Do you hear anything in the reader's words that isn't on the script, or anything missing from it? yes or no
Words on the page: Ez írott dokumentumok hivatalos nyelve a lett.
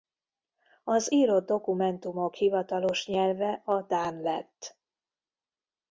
yes